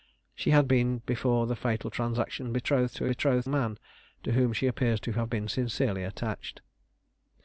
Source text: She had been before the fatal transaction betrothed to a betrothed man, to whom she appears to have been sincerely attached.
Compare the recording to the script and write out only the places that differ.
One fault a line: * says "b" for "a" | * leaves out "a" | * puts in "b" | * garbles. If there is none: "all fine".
all fine